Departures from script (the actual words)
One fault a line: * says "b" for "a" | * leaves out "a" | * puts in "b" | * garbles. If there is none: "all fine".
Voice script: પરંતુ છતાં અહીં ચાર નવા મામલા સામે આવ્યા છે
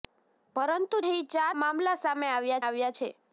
* leaves out "છતાં"
* leaves out "નવા"
* puts in "આવ્યા"